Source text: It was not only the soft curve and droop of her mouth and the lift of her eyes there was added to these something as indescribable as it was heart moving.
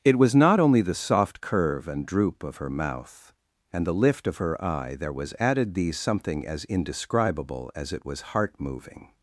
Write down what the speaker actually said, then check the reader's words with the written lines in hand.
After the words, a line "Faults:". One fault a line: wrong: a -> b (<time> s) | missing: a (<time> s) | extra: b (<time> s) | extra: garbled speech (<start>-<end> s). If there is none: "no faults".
It was not only the soft curve and droop of her mouth and the lift of her eye there was added these something as indescribable as it was heart moving.
Faults:
wrong: eyes -> eye (4.6 s)
missing: to (5.7 s)